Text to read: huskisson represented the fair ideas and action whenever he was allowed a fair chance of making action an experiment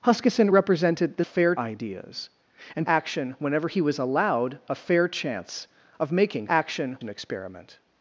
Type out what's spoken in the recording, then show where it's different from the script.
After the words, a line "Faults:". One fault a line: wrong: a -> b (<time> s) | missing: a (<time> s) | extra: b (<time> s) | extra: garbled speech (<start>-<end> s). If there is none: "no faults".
huskisson represented the fair ideas and action whenever he was allowed a fair chance of making action an experiment
Faults:
no faults